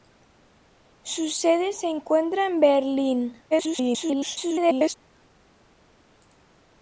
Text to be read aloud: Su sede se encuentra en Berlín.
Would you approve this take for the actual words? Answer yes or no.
no